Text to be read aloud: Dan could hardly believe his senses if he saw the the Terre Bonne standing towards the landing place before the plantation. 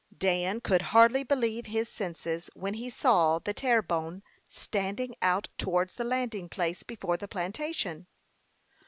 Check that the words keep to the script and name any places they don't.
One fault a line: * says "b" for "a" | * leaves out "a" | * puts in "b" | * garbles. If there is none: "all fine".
* says "when" for "if"
* leaves out "the"
* puts in "out"